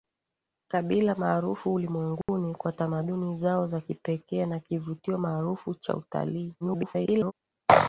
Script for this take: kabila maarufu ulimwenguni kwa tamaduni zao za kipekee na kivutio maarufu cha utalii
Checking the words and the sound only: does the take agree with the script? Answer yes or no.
no